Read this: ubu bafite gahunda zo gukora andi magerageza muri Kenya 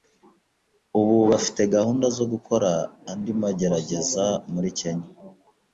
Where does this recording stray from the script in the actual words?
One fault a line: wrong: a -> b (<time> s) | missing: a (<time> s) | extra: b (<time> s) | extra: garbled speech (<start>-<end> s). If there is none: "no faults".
no faults